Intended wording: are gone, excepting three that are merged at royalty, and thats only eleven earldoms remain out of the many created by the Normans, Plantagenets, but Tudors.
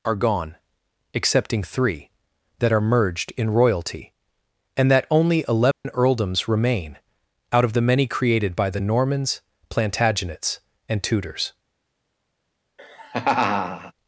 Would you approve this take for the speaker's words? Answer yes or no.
no